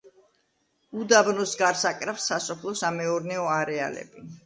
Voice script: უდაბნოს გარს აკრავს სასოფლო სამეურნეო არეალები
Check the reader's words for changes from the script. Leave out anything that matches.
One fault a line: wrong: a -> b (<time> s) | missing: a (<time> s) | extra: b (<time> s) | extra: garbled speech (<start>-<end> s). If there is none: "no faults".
no faults